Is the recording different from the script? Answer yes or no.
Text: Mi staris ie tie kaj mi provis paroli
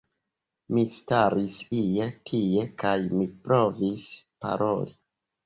no